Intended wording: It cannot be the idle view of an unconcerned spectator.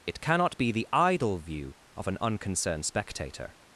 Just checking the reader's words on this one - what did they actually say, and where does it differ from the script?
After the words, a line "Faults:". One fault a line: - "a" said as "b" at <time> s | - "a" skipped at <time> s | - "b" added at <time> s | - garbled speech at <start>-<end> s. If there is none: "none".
It cannot be the idle view of an unconcerned spectator.
Faults:
none